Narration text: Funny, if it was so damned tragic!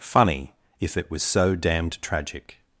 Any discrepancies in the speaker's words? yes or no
no